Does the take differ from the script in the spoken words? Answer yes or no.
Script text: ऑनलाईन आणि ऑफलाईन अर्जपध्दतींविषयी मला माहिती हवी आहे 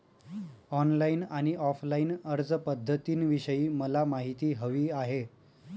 no